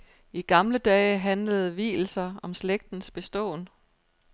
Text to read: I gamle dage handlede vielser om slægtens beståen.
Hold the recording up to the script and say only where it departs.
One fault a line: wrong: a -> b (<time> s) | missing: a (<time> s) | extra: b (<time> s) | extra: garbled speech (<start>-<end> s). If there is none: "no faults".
no faults